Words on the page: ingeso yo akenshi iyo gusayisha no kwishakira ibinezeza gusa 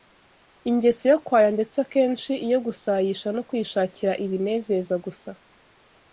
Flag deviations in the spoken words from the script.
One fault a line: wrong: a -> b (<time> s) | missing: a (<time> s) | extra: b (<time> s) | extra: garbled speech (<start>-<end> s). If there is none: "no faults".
extra: kwaya ndetse (1.2 s)